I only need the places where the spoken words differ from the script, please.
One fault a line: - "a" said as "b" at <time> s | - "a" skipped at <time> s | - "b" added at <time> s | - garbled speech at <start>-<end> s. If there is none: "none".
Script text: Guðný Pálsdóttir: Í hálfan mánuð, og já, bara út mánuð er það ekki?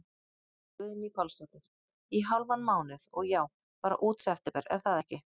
- "mánuð" said as "september" at 4.3 s